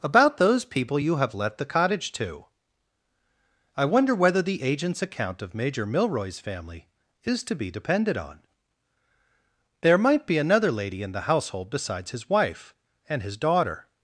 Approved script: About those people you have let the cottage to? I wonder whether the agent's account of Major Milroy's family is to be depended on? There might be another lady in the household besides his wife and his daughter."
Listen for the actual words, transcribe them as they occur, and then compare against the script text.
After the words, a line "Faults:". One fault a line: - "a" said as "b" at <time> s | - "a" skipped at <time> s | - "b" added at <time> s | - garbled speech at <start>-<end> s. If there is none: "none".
About those people you have let the cottage to? I wonder whether the agent's account of Major Milroy's family is to be depended on? There might be another lady in the household besides his wife and his daughter."
Faults:
none